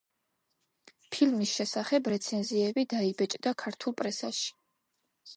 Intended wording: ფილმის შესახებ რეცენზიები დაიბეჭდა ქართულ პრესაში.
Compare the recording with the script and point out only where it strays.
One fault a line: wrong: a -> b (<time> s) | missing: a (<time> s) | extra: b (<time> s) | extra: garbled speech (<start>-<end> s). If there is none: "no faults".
no faults